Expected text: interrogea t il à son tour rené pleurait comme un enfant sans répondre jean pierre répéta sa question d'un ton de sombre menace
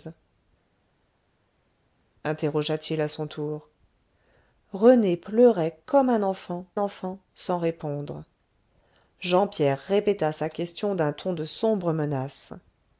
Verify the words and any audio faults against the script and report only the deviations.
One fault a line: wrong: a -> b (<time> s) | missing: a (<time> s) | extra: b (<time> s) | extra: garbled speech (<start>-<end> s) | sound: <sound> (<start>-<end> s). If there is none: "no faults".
extra: enfant (6.8 s)